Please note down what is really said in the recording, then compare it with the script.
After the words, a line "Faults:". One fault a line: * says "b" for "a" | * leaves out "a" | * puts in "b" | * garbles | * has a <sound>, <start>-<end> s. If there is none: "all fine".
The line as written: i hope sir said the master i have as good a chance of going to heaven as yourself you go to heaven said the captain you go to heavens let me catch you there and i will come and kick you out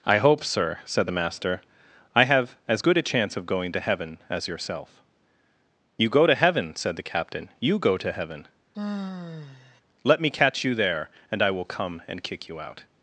i hope sir said the master i have as good a chance of going to heaven as yourself you go to heaven said the captain you go to heaven let me catch you there and i will come and kick you out
Faults:
* says "heaven" for "heavens"
* has a sigh, 8.7-9.8 s